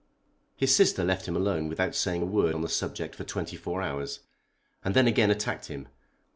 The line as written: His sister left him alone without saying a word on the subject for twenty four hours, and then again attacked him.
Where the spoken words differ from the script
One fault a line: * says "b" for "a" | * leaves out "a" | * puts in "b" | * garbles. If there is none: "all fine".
all fine